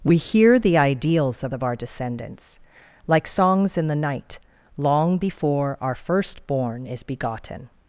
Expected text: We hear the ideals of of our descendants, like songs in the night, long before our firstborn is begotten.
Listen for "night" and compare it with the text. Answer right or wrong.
right